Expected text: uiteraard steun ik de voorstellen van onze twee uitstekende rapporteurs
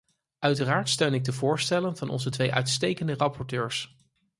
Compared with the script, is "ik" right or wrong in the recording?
right